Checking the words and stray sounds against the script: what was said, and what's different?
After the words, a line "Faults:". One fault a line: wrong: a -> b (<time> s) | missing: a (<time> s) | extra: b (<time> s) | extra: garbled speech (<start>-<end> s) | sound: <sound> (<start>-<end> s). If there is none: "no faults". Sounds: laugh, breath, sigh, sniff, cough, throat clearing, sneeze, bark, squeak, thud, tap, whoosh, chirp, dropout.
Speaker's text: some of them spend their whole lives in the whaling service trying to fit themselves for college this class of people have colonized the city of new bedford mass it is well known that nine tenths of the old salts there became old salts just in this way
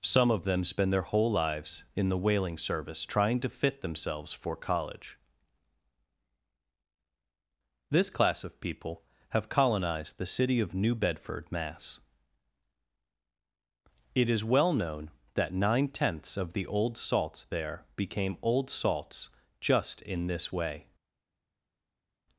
some of them spend their whole lives in the whaling service trying to fit themselves for college this class of people have colonized the city of new bedford mass it is well known that nine tenths of the old salts there became old salts just in this way
Faults:
no faults